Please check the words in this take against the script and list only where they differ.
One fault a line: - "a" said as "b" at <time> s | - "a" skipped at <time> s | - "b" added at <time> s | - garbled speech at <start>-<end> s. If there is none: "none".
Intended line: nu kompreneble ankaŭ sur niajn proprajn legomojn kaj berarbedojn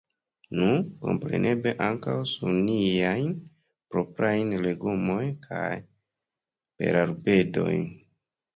none